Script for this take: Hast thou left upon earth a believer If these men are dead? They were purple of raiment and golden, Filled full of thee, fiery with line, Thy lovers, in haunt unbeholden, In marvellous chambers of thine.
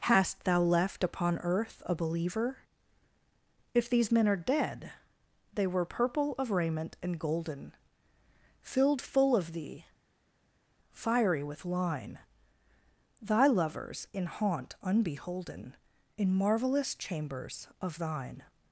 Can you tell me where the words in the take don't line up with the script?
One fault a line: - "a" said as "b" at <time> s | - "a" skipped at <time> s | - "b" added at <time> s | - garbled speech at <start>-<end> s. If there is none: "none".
none